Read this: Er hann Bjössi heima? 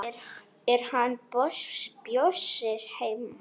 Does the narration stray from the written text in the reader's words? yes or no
no